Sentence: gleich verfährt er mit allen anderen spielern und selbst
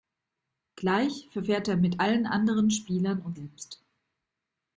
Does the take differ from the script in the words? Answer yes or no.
no